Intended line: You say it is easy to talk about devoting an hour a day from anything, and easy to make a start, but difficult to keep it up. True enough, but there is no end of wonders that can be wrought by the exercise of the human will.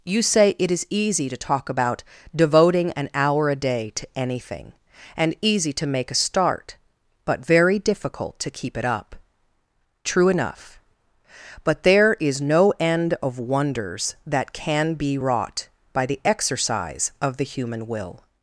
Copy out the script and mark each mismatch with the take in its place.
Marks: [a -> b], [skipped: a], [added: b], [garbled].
You say it is easy to talk about devoting an hour a day [from -> to] anything, and easy to make a start, but [added: very] difficult to keep it up. True enough, but there is no end of wonders that can be wrought by the exercise of the human will.